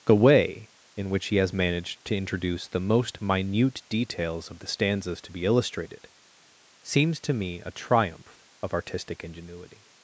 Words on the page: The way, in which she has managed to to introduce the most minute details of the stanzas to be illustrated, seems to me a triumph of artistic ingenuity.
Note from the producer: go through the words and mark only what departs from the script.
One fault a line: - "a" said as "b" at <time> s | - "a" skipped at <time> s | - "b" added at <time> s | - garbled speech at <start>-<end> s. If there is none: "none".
- "she" said as "he" at 1.3 s
- "to" skipped at 2.2 s